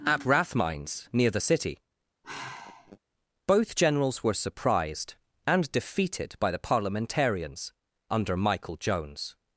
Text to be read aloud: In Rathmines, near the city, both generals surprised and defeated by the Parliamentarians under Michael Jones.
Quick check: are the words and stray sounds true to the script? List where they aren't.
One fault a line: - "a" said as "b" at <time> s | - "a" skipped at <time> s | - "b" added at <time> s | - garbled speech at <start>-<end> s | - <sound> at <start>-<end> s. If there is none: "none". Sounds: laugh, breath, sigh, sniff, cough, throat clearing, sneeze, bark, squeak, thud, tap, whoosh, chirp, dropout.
- "In" said as "At" at 0.0 s
- sigh at 2.2-3.0 s
- "were" added at 4.2 s